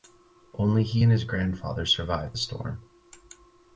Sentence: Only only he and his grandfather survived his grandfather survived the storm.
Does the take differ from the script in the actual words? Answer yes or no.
yes